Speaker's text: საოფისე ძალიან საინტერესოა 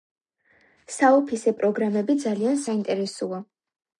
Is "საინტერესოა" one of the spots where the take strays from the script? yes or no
no